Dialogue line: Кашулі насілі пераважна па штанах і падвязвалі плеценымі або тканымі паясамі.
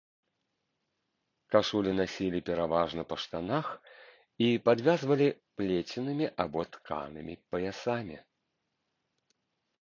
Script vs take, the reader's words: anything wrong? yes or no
no